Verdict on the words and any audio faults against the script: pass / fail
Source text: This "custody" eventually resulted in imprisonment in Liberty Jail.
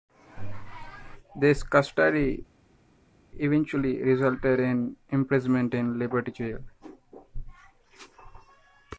pass